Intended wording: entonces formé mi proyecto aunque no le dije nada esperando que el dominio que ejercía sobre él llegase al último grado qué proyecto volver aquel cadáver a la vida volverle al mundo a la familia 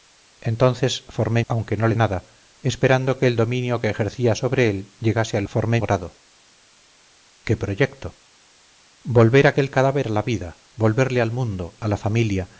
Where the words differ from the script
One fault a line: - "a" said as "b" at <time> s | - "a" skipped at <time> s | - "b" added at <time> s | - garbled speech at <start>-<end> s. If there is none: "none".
- "mi proyecto" skipped at 1.4 s
- "dije" skipped at 2.0 s
- "último" said as "formé" at 5.5 s